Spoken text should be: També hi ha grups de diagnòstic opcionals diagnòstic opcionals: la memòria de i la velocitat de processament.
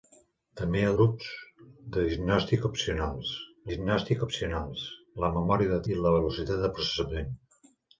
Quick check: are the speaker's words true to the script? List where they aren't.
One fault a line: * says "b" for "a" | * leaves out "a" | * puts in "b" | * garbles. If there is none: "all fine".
all fine